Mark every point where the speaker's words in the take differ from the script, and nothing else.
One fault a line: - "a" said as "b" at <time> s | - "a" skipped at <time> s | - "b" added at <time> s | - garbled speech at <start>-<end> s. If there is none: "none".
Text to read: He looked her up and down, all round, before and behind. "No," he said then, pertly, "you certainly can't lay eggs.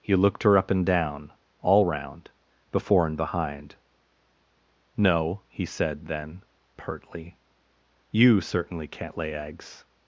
none